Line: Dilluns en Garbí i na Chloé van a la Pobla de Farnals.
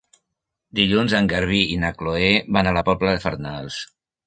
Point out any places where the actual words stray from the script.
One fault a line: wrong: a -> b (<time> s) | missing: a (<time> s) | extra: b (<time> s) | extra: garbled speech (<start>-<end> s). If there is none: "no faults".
no faults